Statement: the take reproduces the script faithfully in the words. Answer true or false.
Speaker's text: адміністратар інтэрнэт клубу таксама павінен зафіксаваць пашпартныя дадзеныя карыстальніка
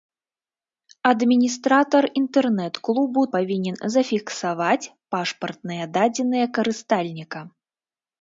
false